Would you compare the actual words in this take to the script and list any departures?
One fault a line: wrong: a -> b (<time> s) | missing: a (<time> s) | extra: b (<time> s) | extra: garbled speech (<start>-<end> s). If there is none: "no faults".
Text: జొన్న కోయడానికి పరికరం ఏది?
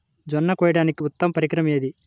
extra: ఉత్తమ (1.0 s)